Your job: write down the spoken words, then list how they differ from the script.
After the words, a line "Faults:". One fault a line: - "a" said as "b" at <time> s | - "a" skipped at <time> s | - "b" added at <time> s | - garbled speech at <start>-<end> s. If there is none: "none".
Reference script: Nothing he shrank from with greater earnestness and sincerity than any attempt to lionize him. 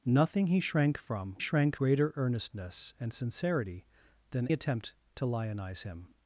Nothing he shrank from shrank greater earnestness and sincerity than attempt to lionize him.
Faults:
- "with" said as "shrank" at 1.4 s
- "any" skipped at 4.5 s